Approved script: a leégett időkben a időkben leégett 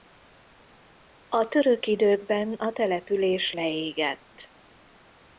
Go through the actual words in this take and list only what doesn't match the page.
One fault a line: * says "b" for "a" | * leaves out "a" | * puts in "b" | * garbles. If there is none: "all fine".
* says "török" for "leégett"
* says "település" for "időkben"